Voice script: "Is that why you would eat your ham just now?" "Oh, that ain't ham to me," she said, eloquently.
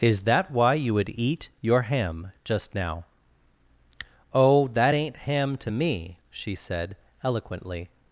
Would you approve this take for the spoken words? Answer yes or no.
yes